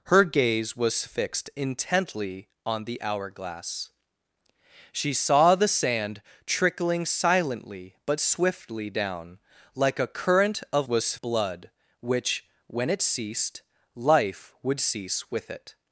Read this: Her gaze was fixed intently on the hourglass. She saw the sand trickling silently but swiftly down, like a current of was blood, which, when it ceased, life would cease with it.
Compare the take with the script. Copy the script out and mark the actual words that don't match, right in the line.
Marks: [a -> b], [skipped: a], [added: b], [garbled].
Her gaze was fixed intently on the hourglass. She saw the sand trickling silently but swiftly down, like a current of was blood, which, when it ceased, life would cease with it.